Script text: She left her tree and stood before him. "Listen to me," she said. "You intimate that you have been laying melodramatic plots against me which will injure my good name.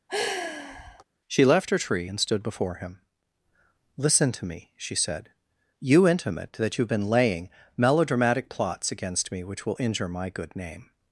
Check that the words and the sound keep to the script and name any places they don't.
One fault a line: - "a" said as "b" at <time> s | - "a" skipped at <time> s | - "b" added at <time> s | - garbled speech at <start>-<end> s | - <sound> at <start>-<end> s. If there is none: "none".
- sigh at 0.1-1.0 s